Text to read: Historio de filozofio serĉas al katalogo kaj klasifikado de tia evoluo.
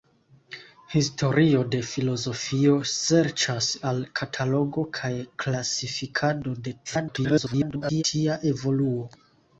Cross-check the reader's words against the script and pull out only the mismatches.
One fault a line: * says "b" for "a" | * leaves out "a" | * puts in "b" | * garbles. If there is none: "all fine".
* garbles